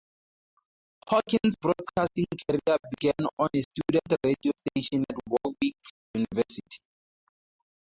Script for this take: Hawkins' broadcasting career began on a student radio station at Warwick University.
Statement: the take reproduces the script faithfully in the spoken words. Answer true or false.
true